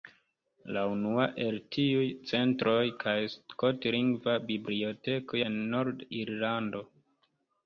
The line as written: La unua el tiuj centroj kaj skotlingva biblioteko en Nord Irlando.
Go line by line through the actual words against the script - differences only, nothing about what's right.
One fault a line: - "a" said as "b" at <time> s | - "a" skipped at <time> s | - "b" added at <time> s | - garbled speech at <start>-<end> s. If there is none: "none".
none